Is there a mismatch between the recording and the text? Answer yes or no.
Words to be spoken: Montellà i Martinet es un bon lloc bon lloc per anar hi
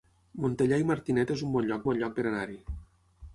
no